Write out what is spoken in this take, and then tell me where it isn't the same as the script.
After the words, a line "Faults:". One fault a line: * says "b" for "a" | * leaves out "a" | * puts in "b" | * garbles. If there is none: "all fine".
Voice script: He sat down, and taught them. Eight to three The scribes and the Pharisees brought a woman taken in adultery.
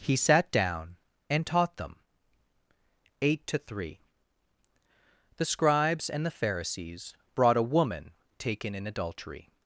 He sat down, and taught them. Eight to three The scribes and the Pharisees brought a woman taken in adultery.
Faults:
all fine